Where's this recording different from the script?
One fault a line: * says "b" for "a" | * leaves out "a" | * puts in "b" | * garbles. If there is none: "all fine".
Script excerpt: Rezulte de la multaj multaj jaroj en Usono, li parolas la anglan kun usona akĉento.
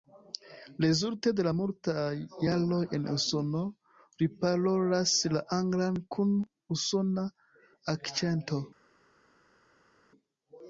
* leaves out "multaj"